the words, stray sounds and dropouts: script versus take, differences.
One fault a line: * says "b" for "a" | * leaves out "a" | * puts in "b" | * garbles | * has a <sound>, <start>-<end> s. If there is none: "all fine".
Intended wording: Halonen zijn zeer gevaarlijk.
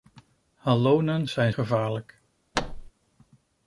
* leaves out "zeer"
* has a thud, 2.5-2.9 s